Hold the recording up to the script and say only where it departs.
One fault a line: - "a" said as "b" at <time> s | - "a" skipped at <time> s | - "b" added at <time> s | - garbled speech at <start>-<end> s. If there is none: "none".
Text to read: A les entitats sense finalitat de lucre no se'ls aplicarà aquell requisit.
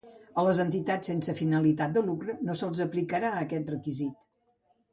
- "aquell" said as "aquest" at 3.4 s